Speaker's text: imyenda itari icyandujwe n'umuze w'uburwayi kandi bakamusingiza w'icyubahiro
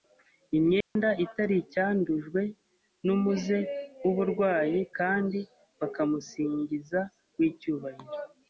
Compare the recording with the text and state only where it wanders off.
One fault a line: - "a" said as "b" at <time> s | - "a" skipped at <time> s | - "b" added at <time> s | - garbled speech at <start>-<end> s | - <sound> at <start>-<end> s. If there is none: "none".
- dropout at 0.8-1.0 s